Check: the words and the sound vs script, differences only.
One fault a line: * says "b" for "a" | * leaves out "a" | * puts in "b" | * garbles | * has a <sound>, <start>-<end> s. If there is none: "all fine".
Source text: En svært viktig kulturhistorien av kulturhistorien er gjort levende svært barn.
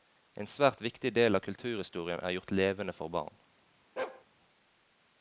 * says "del" for "kulturhistorien"
* says "for" for "svært"
* has a bark, 4.0-4.2 s